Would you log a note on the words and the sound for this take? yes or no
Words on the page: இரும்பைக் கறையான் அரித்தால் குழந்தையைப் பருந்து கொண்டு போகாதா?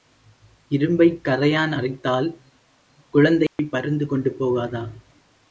yes